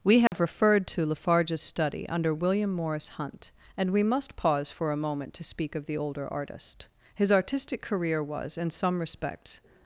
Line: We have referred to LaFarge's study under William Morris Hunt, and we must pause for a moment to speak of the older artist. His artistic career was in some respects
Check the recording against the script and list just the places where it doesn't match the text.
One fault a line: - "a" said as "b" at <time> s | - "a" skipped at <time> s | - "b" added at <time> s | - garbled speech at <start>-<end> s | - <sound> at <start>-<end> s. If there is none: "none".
- dropout at 0.3-0.3 s